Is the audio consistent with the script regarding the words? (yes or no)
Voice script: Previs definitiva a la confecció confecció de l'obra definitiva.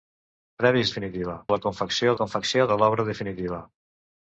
yes